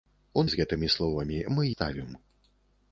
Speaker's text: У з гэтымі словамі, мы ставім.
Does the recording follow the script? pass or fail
pass